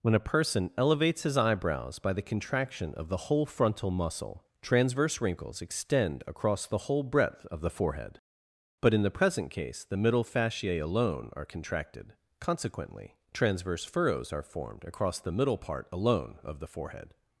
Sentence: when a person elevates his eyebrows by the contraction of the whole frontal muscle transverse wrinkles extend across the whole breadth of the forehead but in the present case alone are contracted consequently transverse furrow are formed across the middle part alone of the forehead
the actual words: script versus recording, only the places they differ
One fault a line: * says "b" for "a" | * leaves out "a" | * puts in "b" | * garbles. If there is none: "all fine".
* puts in "the middle fasciae"
* says "furrows" for "furrow"